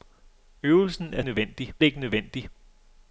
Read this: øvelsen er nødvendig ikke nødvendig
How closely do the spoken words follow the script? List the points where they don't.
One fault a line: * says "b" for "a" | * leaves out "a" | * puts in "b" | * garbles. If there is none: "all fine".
all fine